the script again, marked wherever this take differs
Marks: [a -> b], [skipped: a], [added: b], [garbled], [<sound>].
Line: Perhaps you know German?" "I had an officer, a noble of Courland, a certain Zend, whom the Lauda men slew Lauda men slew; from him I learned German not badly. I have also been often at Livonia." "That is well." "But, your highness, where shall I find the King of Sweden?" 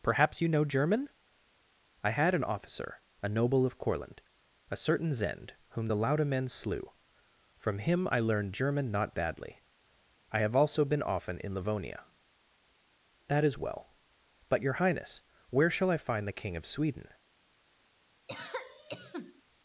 Perhaps you know German?" "I had an officer, a noble of Courland, a certain Zend, whom the Lauda men slew [skipped: Lauda men slew;] from him I learned German not badly. I have also been often [at -> in] Livonia." "That is well." "But, your highness, where shall I find the King of Sweden?" [cough]